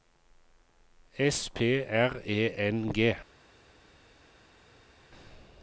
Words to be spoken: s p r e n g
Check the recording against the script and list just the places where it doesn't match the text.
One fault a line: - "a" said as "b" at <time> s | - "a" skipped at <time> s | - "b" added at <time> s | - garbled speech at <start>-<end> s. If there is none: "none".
none